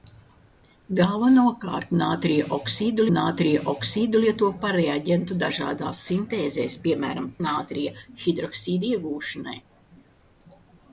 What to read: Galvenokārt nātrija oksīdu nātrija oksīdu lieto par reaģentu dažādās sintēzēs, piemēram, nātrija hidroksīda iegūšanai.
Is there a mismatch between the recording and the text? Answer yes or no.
no